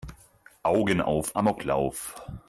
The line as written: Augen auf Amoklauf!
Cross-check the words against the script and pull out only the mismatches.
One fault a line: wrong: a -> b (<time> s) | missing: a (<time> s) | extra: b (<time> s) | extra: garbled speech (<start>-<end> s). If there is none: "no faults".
no faults